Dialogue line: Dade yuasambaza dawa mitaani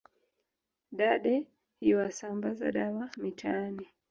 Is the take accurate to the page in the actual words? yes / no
yes